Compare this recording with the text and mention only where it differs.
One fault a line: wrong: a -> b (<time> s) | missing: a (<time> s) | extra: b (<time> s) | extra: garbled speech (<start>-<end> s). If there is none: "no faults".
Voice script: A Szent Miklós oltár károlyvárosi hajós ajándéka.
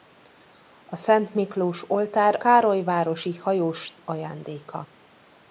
no faults